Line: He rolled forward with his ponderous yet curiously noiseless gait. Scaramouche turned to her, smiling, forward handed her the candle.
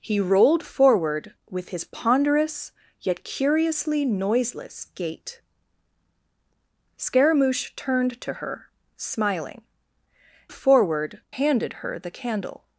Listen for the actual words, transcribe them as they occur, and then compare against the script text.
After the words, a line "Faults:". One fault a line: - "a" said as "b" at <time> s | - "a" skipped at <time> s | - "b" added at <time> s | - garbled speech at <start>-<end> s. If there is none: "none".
He rolled forward with his ponderous yet curiously noiseless gait. Scaramouche turned to her, smiling, forward handed her the candle.
Faults:
none